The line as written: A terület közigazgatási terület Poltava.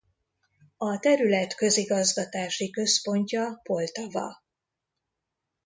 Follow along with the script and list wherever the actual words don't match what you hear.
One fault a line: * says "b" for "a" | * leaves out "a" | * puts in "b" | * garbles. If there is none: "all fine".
* says "központja" for "terület"